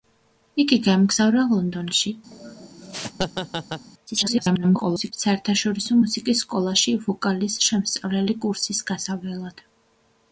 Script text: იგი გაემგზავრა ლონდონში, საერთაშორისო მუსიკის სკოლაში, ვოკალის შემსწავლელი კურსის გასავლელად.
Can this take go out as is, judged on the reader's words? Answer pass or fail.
fail